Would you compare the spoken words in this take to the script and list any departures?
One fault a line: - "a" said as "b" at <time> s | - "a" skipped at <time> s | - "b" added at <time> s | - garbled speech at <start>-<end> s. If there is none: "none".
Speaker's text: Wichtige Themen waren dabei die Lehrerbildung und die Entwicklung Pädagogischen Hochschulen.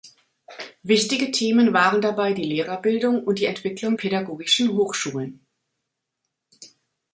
none